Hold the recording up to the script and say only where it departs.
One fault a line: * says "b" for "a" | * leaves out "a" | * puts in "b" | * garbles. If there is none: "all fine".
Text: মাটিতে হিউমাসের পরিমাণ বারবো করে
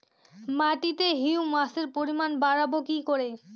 * puts in "কি"